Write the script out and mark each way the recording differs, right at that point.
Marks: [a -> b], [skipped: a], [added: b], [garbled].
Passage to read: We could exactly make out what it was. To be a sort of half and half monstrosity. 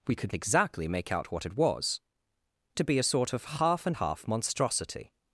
We could exactly make out what it was. To be a sort of half and half monstrosity.